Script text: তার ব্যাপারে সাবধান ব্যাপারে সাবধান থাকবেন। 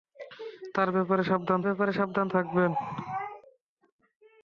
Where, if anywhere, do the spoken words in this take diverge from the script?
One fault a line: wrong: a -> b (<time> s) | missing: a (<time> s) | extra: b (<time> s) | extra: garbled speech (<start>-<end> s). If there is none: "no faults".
no faults